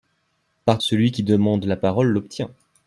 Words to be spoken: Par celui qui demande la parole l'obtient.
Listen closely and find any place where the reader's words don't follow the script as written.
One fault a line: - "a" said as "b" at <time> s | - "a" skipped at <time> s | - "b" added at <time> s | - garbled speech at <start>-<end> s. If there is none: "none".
none